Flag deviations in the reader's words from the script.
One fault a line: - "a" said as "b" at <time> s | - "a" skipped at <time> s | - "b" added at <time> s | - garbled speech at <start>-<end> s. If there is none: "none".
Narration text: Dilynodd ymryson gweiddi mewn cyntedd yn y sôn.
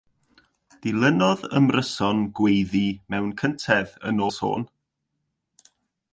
none